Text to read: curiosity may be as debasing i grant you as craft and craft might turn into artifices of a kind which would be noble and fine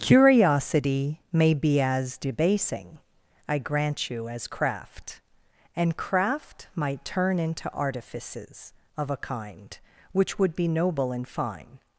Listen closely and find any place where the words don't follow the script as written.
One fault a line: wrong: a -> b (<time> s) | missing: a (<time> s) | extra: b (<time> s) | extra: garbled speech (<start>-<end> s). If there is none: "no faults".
no faults